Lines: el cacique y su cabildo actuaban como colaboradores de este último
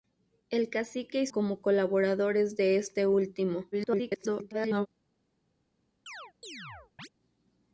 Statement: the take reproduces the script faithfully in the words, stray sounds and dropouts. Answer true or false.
false